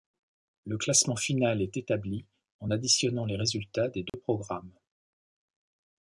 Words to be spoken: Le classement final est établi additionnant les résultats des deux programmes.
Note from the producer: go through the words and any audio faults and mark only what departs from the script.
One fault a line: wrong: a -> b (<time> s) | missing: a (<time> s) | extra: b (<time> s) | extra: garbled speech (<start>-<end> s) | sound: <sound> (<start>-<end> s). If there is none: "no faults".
extra: en (2.6 s)
sound: dropout (4.1-4.1 s)